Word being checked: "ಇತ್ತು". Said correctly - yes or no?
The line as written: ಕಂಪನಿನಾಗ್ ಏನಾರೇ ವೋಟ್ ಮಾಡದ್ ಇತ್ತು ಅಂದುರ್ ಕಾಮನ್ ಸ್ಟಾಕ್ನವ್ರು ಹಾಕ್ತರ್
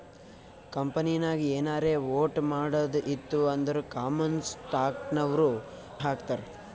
yes